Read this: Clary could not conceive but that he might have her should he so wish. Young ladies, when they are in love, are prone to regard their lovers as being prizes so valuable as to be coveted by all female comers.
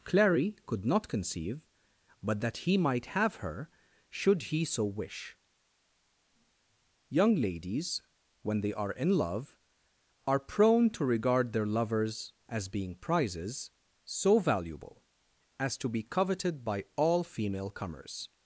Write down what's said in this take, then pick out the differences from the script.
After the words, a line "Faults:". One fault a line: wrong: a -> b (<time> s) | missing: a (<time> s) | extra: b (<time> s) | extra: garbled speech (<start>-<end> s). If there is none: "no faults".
Clary could not conceive but that he might have her should he so wish. Young ladies, when they are in love, are prone to regard their lovers as being prizes so valuable as to be coveted by all female comers.
Faults:
no faults